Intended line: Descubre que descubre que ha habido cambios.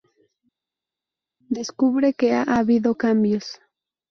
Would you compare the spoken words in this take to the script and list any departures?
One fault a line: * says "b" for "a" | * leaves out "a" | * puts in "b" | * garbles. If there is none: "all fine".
* leaves out "descubre que"